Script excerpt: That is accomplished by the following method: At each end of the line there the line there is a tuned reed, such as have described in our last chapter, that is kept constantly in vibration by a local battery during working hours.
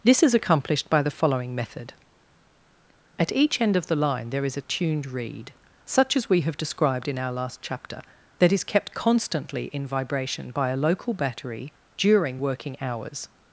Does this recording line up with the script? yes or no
no